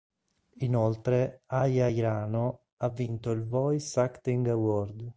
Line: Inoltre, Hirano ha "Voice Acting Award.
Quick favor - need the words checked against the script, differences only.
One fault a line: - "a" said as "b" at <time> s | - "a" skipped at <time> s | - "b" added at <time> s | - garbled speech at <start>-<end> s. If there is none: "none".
- "Aya" added at 1.4 s
- "vinto il" added at 2.8 s